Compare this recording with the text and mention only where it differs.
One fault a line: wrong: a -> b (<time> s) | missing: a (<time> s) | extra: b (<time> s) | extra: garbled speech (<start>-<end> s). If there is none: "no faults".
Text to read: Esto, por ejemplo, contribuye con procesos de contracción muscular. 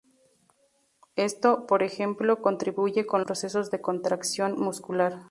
no faults